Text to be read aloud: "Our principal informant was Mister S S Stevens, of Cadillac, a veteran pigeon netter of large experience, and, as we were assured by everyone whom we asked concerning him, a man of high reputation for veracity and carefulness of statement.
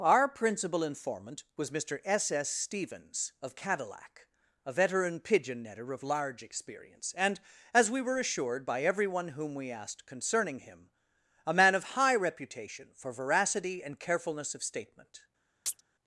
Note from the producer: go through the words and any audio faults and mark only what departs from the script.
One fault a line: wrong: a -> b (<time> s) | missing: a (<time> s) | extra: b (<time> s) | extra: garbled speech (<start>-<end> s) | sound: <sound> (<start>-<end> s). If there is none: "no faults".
sound: chirp (15.7-15.8 s)